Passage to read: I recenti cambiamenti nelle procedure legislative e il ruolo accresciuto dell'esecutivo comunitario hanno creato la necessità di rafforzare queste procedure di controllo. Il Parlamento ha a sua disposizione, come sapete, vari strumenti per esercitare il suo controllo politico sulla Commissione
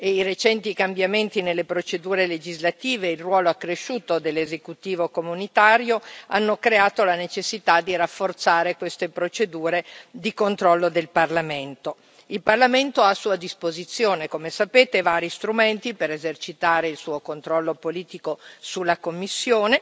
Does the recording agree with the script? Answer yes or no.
no